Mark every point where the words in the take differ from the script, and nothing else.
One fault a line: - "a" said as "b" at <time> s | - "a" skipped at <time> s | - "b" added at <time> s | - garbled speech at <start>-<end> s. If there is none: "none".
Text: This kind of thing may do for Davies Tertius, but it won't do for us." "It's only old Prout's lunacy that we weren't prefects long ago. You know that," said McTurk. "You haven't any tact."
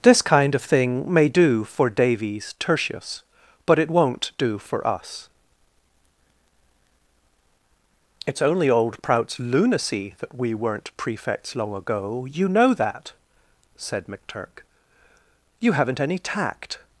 none